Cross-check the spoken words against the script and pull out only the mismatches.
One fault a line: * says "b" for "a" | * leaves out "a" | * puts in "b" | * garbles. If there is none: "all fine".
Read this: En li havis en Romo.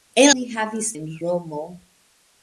all fine